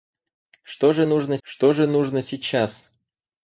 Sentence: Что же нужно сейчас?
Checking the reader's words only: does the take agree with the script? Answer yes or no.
no